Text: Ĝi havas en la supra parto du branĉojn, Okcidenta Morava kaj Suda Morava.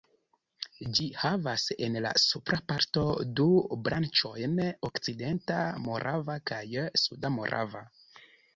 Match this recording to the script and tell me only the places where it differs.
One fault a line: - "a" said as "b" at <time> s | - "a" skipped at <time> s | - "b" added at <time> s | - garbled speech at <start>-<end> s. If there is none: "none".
none